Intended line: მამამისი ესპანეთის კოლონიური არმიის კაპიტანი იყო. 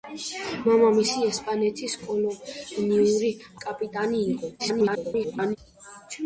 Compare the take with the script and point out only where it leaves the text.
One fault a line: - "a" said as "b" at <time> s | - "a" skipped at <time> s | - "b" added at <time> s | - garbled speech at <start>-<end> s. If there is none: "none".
- "არმიის" skipped at 3.3 s
- garbled speech at 4.6-5.6 s